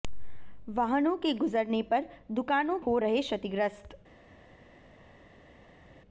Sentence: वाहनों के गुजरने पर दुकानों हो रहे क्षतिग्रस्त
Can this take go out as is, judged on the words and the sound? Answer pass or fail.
pass